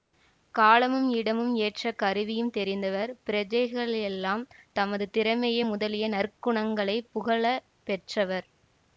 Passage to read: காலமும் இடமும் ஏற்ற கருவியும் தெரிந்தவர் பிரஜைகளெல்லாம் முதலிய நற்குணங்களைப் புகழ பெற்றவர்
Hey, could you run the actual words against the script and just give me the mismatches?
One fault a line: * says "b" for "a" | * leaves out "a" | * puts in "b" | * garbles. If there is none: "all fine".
* puts in "தமது திறமை"